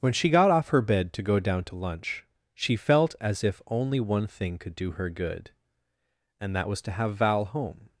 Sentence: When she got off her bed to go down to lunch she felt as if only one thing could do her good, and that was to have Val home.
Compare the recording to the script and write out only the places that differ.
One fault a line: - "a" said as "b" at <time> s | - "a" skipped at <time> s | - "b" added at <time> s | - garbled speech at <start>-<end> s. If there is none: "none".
none